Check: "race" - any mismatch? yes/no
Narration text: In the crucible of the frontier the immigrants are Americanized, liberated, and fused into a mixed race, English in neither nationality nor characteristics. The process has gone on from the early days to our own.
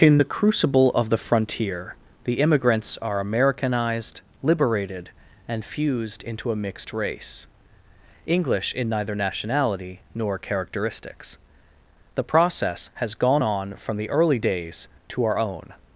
no